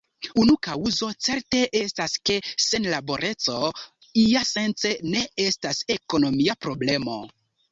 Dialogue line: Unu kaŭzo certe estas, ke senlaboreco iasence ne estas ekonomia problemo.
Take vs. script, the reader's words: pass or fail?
pass